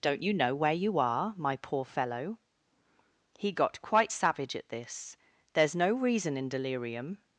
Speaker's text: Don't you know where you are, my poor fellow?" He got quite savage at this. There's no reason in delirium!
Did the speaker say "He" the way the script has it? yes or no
yes